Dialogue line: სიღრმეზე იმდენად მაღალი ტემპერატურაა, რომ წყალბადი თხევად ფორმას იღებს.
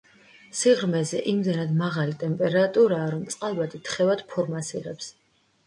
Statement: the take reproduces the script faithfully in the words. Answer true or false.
true